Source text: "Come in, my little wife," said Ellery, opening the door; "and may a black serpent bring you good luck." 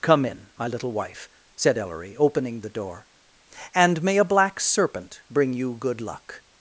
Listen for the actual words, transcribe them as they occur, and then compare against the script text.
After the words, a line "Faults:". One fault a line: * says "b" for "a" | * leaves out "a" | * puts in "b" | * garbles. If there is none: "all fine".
"Come in, my little wife," said Ellery, opening the door; "and may a black serpent bring you good luck."
Faults:
all fine